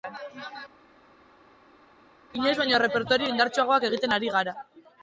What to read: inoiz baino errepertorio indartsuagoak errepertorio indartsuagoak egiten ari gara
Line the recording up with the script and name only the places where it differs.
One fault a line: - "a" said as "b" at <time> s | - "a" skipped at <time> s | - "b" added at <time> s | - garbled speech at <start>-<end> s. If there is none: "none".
- "errepertorio indartsuagoak" skipped at 3.9 s